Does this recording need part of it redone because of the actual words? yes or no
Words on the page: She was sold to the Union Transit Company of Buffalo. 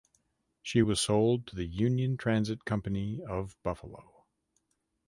no